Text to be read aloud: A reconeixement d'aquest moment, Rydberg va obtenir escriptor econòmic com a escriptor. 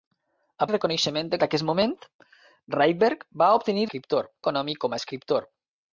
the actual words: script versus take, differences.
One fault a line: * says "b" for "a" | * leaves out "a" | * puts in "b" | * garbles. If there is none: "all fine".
all fine